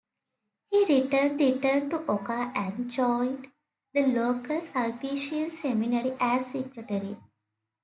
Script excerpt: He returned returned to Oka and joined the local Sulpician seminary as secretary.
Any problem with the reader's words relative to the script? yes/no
no